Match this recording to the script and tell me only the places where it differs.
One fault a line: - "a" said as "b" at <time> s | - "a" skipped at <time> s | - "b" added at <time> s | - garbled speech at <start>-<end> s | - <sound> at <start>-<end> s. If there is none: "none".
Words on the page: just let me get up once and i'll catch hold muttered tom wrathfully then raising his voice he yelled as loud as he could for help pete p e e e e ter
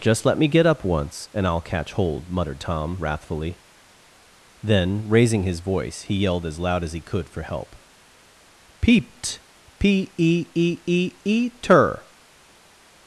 - "pete" said as "peeped" at 8.8 s